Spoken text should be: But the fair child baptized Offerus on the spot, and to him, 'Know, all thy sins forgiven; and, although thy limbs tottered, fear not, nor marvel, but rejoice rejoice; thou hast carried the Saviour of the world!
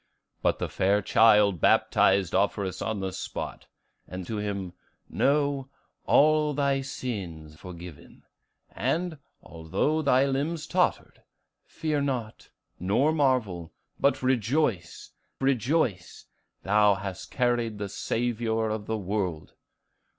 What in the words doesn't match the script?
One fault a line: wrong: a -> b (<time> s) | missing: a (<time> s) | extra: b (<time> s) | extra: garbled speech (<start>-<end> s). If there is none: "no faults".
no faults